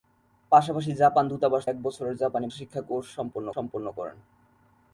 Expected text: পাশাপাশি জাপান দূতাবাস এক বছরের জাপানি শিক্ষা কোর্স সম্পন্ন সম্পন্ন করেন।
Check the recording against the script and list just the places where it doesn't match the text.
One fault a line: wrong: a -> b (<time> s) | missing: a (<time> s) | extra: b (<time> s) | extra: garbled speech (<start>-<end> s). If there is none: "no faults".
no faults